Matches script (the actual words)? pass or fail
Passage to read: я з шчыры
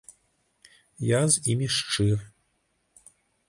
fail